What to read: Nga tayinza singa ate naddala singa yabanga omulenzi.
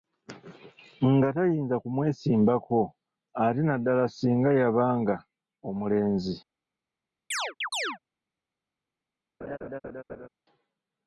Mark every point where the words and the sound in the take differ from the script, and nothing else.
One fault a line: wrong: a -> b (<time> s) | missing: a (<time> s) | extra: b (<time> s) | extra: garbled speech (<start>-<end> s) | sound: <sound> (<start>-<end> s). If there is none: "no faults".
wrong: singa -> kumwesimbako (1.8 s)
sound: chirp (7.3-8.0 s)
sound: laugh (9.4-10.3 s)